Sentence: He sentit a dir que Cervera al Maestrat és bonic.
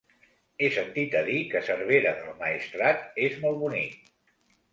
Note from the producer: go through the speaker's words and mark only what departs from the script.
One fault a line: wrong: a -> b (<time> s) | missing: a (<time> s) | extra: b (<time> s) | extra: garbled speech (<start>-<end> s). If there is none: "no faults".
wrong: al -> del (2.2 s)
extra: molt (3.5 s)